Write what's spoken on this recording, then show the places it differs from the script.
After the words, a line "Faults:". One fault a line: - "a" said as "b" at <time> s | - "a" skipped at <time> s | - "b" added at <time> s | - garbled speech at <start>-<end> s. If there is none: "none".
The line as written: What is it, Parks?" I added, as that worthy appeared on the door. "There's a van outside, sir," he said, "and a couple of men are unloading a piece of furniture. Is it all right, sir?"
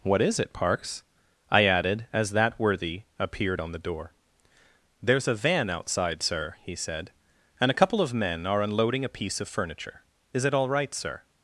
What is it, Parks?" I added, as that worthy appeared on the door. "There's a van outside, sir," he said, "and a couple of men are unloading a piece of furniture. Is it all right, sir?"
Faults:
none